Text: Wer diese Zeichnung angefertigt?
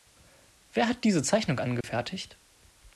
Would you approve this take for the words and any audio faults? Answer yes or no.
no